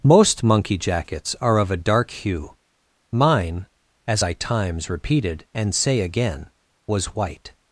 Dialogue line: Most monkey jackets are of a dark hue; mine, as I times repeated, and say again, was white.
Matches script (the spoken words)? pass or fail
pass